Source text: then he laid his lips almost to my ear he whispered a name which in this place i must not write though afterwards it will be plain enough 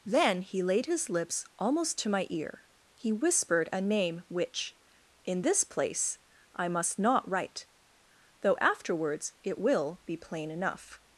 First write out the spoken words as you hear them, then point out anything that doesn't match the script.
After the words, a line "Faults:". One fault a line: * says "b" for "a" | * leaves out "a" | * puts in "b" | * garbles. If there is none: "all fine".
then he laid his lips almost to my ear he whispered a name which in this place i must not write though afterwards it will be plain enough
Faults:
all fine